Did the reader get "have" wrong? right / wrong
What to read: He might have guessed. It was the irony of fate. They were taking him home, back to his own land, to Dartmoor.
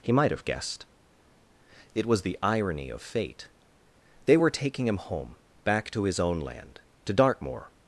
right